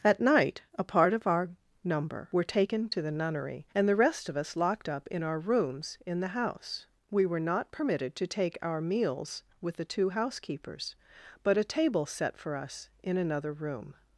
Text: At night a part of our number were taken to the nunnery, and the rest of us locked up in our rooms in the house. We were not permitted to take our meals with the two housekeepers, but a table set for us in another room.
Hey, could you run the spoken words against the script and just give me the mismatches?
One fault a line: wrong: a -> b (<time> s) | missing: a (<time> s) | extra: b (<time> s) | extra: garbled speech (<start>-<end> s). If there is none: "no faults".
no faults